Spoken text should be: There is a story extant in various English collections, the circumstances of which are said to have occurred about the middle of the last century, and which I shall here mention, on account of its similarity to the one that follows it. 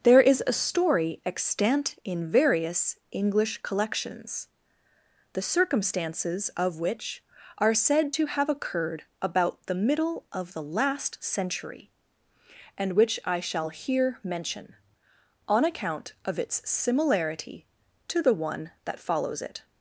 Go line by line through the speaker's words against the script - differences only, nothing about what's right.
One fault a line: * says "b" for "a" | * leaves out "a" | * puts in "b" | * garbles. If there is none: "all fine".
all fine